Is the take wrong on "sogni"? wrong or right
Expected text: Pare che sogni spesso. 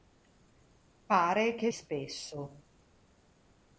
wrong